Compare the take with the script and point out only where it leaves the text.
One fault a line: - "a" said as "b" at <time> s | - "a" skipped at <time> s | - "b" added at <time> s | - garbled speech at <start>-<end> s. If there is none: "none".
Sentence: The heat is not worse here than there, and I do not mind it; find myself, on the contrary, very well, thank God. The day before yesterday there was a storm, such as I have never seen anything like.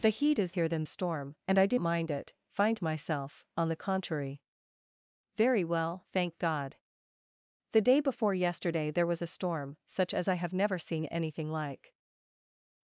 - "not worse" skipped at 0.6 s
- "there" said as "storm" at 0.9 s
- "not" skipped at 1.8 s